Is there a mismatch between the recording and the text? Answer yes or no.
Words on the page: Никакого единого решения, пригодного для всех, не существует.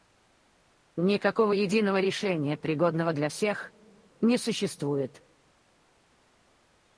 no